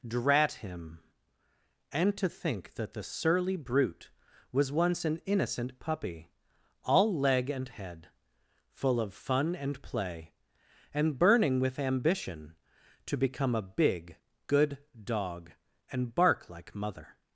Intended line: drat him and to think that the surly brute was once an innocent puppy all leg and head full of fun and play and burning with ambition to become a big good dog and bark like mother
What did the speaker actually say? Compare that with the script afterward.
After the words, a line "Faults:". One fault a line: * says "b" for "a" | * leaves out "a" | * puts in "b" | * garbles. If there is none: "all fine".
drat him and to think that the surly brute was once an innocent puppy all leg and head full of fun and play and burning with ambition to become a big good dog and bark like mother
Faults:
all fine